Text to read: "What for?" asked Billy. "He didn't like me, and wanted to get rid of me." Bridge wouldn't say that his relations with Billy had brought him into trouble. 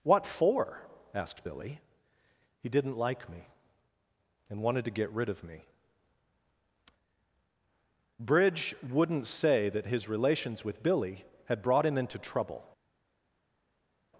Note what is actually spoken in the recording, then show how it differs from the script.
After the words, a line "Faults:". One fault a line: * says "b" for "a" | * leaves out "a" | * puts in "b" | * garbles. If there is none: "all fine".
"What for?" asked Billy. "He didn't like me, and wanted to get rid of me." Bridge wouldn't say that his relations with Billy had brought him into trouble.
Faults:
all fine